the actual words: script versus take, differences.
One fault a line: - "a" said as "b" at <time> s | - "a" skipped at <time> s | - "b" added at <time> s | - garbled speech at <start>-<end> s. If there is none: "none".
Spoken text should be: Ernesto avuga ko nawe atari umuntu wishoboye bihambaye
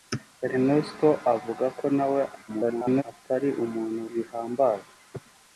- garbled speech at 2.5-3.0 s
- "wishoboye" skipped at 4.0 s